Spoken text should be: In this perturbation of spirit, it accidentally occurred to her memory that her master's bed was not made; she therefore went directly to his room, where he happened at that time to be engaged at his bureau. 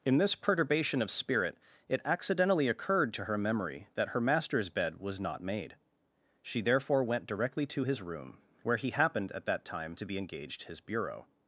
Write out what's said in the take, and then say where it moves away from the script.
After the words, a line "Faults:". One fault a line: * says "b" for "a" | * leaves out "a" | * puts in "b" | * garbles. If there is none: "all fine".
In this perturbation of spirit, it accidentally occurred to her memory that her master's bed was not made; she therefore went directly to his room, where he happened at that time to be engaged his bureau.
Faults:
* leaves out "at"